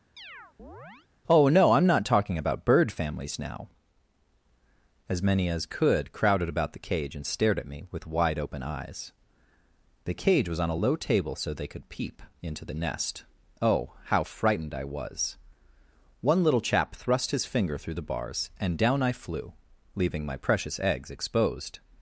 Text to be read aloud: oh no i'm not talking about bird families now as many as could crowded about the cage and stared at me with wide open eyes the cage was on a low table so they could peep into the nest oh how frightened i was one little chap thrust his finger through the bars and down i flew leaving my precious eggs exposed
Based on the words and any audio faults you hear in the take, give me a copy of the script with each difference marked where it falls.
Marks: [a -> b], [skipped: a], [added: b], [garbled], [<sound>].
[chirp] oh no i'm not talking about bird families now as many as could crowded about the cage and stared at me with wide open eyes the cage was on a low table so they could peep into the nest oh how frightened i was one little chap thrust his finger through the bars and down i flew leaving my precious eggs exposed